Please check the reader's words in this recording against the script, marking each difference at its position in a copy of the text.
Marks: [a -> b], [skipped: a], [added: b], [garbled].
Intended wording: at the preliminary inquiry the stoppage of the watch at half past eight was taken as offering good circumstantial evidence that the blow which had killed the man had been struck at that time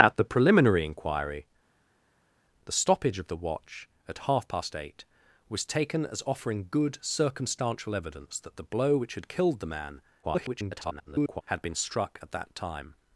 at the preliminary inquiry the stoppage of the watch at half past eight was taken as offering good circumstantial evidence that the blow which had killed the man [garbled] had been struck at that time